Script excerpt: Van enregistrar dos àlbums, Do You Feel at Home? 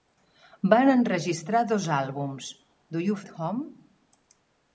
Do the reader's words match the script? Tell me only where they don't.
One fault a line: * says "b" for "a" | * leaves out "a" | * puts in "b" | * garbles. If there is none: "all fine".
* leaves out "Feel"